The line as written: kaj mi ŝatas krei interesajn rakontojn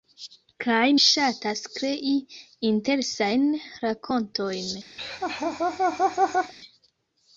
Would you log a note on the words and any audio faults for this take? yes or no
yes